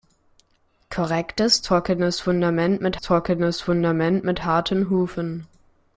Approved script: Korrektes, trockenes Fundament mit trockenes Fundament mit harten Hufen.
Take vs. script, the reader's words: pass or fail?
pass